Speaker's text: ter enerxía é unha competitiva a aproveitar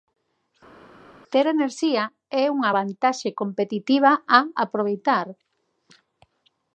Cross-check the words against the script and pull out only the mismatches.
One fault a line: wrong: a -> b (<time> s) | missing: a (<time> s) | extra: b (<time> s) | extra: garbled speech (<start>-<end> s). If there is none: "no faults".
extra: vantaxe (2.8 s)